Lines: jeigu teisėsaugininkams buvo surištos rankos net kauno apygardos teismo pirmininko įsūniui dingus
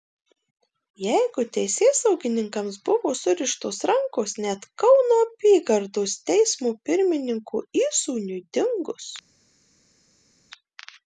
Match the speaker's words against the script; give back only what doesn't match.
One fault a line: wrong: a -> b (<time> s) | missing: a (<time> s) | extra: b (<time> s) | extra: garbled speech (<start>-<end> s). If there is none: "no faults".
no faults